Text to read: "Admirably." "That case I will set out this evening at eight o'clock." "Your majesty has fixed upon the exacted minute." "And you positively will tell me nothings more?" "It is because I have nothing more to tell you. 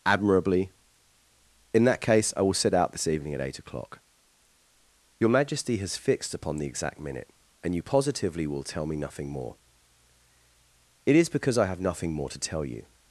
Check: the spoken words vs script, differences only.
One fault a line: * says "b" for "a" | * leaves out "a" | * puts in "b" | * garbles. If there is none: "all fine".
* puts in "In"
* says "exact" for "exacted"
* says "nothing" for "nothings"